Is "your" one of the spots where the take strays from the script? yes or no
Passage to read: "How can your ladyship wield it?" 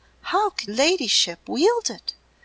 yes